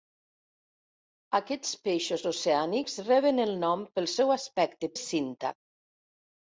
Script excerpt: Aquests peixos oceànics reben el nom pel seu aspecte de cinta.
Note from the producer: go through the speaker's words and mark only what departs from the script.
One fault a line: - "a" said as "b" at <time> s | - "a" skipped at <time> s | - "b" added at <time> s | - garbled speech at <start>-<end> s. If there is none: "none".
none